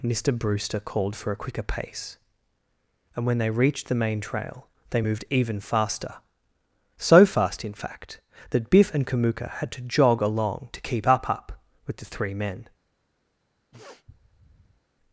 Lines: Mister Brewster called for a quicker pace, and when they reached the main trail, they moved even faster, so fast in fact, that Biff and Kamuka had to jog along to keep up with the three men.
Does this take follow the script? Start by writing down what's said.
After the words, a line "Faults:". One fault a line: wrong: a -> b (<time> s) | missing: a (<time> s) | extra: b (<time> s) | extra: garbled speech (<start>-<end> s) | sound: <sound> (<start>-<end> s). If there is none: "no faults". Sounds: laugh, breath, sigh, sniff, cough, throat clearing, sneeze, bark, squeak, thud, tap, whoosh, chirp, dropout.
Mister Brewster called for a quicker pace, and when they reached the main trail, they moved even faster, so fast in fact, that Biff and Kamuka had to jog along to keep up up with the three men.
Faults:
extra: up (11.3 s)
sound: sniff (13.7-14.8 s)